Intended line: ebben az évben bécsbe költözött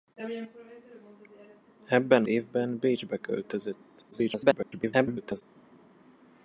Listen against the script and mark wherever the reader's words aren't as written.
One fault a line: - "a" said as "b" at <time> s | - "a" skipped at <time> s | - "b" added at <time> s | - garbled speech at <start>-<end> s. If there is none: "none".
- "az" skipped at 2.2 s
- garbled speech at 4.1-5.4 s